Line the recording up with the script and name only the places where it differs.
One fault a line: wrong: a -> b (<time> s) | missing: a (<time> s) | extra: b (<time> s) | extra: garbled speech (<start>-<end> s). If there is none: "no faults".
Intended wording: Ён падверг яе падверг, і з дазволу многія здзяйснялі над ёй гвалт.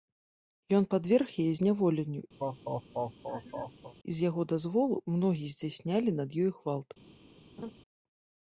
wrong: падверг -> зняволенню (1.6 s)
extra: яго (4.3 s)